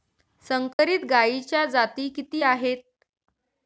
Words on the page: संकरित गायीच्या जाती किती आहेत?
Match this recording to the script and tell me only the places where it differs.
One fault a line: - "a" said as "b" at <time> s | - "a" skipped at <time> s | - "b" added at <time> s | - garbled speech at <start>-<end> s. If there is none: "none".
none